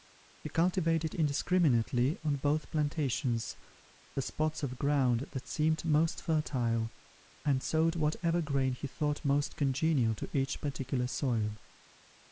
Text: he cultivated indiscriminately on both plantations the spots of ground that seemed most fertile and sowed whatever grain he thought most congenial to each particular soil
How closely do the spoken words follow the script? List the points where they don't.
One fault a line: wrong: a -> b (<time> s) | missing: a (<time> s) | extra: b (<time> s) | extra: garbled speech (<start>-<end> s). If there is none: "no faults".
no faults